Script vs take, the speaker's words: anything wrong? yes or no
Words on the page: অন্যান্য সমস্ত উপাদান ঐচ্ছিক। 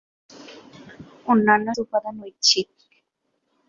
yes